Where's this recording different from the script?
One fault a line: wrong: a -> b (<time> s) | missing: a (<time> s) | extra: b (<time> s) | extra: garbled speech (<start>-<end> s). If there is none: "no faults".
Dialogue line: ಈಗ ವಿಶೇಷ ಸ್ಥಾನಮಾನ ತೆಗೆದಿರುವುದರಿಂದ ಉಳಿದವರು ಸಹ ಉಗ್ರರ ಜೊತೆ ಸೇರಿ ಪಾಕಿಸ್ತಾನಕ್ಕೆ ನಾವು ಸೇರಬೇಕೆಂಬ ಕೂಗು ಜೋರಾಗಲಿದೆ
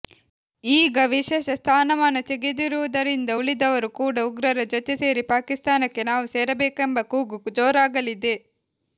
wrong: ಸಹ -> ಕೂಡ (4.0 s)